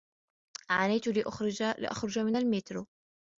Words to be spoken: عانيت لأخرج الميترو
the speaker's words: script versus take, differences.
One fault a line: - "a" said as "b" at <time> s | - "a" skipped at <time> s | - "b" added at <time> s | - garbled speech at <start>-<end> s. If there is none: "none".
- "من" added at 2.2 s